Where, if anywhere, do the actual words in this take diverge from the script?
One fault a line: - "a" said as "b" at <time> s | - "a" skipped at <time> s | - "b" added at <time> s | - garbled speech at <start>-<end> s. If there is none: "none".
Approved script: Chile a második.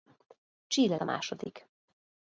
none